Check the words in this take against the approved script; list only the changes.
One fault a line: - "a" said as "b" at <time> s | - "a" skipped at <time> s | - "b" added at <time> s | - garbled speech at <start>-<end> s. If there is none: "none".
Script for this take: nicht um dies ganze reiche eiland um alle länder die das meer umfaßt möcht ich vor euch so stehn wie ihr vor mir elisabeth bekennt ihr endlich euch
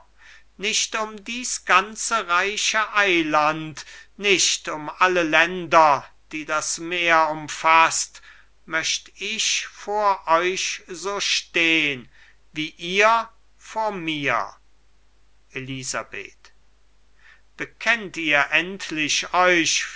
- "nicht" added at 4.2 s